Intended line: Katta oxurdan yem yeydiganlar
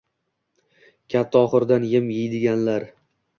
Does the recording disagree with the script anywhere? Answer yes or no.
no